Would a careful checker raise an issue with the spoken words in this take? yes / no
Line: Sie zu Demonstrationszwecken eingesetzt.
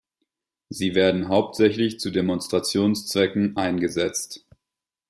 yes